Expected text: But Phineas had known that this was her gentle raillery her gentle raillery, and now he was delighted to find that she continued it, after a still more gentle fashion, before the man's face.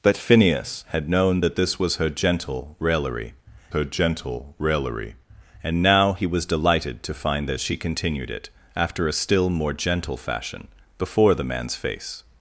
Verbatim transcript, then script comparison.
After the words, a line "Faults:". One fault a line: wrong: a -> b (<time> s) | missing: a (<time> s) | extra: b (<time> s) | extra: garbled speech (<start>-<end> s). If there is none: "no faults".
But Phineas had known that this was her gentle raillery her gentle raillery, and now he was delighted to find that she continued it, after a still more gentle fashion, before the man's face.
Faults:
no faults